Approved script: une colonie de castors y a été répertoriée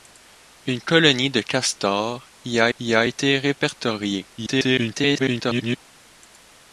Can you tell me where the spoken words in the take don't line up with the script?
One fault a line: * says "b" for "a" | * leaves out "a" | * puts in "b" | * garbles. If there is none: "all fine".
* puts in "y a"
* garbles